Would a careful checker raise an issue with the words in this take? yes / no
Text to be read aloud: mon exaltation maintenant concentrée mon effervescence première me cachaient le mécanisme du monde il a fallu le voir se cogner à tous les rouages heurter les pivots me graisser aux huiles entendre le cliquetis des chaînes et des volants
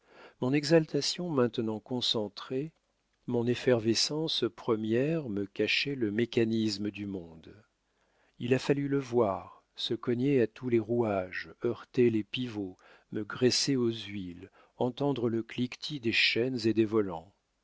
no